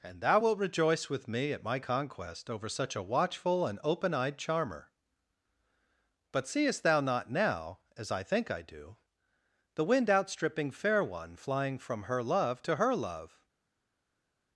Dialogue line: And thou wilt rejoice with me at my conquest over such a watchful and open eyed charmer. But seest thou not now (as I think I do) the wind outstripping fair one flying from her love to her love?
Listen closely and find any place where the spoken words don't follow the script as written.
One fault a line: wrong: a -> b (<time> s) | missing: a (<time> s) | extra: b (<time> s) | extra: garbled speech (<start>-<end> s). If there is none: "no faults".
no faults